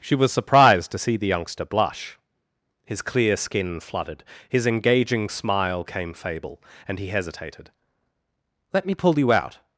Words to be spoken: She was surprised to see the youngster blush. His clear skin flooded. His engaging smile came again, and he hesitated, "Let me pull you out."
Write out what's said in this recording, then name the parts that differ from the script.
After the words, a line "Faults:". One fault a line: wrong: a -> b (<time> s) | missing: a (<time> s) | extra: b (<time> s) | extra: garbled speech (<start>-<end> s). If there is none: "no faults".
She was surprised to see the youngster blush. His clear skin flooded. His engaging smile came fable, and he hesitated, "Let me pull you out."
Faults:
wrong: again -> fable (6.2 s)